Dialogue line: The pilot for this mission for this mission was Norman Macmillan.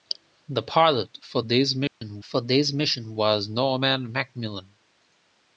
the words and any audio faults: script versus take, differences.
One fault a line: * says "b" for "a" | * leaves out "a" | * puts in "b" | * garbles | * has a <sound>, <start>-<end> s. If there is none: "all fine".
* has a dropout, 1.9-2.0 s